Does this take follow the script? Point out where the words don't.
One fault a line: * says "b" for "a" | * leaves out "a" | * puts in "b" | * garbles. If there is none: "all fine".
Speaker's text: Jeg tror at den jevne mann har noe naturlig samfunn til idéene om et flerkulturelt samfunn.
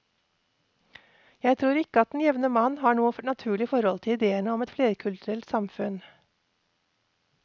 * puts in "ikke"
* says "forhold" for "samfunn"